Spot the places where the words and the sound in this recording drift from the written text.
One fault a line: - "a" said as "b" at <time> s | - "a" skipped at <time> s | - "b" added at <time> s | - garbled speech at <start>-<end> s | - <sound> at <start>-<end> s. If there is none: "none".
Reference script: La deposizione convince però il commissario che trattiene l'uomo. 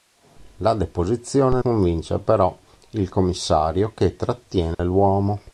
- dropout at 4.7-4.8 s